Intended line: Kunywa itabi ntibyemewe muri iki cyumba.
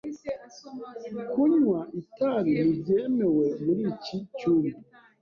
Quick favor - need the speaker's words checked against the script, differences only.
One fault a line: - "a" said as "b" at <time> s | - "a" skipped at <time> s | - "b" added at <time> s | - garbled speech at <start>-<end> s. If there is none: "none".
none